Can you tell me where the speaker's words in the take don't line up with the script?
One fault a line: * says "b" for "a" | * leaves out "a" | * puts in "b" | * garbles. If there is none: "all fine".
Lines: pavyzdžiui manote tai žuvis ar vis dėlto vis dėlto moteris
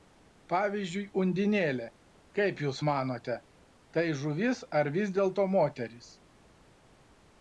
* puts in "undinėlė kaip jūs"
* leaves out "vis dėlto"